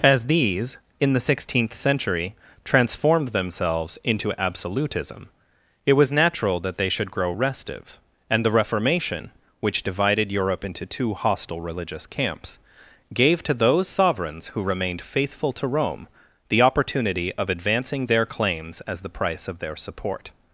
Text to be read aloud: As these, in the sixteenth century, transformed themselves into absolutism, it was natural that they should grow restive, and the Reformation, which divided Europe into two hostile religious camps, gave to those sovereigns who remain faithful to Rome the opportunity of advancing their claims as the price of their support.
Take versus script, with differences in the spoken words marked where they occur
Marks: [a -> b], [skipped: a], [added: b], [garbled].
As these, in the sixteenth century, transformed themselves into absolutism, it was natural that they should grow restive, and the Reformation, which divided Europe into two hostile religious camps, gave to those sovereigns who [remain -> remained] faithful to Rome the opportunity of advancing their claims as the price of their support.